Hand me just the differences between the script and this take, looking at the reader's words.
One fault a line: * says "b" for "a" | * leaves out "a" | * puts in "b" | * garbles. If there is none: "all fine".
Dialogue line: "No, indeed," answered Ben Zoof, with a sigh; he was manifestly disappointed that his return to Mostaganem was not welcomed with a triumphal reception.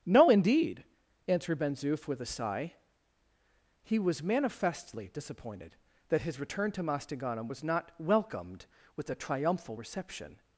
all fine